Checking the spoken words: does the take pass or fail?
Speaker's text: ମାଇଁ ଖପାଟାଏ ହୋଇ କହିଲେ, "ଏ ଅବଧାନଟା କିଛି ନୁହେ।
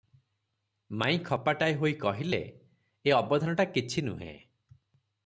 pass